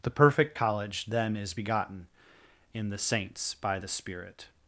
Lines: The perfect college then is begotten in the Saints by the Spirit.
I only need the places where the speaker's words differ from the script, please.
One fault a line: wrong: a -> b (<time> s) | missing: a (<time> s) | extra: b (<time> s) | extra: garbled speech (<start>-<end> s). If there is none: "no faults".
no faults